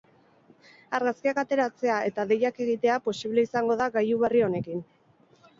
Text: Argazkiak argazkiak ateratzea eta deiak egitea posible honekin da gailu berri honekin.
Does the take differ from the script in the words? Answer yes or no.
yes